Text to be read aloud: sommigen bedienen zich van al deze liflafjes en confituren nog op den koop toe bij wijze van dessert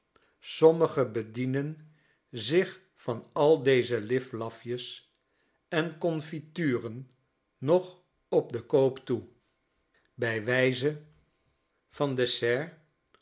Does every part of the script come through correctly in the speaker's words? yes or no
yes